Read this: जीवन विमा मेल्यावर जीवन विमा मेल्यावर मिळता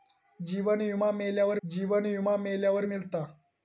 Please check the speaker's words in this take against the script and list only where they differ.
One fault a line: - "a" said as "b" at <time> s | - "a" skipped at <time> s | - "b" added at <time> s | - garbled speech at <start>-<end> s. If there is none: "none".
none